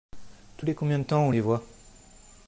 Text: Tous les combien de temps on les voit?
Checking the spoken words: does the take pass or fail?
pass